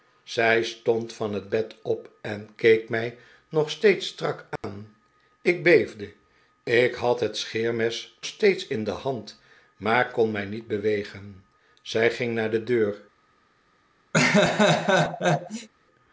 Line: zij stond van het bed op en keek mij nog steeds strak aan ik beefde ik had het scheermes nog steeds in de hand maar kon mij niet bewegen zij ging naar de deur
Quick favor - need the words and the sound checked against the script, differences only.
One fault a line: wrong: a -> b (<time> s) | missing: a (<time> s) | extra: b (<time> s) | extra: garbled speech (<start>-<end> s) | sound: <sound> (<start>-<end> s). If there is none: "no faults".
sound: dropout (4.6-4.6 s)
missing: nog (8.2 s)
sound: laugh (14.1-15.7 s)